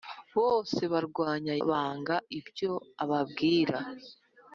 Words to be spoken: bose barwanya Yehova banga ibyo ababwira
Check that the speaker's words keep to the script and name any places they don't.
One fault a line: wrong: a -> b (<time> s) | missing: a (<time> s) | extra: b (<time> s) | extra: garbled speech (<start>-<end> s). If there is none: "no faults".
missing: Yehova (1.5 s)